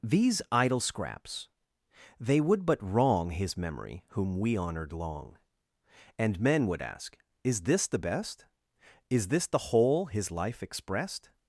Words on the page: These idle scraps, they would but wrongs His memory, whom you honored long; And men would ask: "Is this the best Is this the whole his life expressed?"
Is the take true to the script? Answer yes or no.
no